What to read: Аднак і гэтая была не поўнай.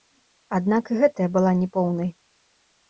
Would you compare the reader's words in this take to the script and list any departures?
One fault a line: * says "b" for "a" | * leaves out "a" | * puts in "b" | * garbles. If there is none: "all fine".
all fine